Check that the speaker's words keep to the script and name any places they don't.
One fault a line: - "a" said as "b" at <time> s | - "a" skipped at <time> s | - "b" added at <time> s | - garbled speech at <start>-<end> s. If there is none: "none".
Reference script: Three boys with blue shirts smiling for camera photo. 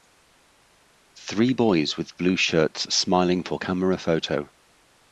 none